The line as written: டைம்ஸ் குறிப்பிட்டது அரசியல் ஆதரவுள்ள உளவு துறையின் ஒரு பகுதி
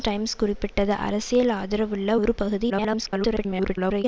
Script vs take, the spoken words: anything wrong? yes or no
yes